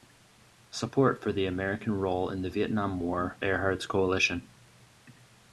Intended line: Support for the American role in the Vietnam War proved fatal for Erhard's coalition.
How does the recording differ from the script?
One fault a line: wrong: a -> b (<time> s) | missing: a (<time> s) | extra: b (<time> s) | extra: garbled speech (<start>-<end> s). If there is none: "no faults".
missing: proved fatal for (3.4 s)